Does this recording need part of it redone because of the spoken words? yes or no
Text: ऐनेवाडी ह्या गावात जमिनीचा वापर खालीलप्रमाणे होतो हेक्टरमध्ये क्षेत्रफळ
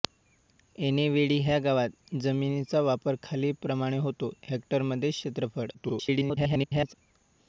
yes